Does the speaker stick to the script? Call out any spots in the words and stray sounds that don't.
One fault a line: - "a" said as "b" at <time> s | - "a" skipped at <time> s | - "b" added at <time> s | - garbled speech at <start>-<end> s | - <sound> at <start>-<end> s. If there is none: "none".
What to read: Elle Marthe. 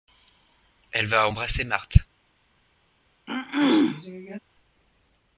- "va embrasser" added at 1.1 s
- throat clearing at 3.3-4.4 s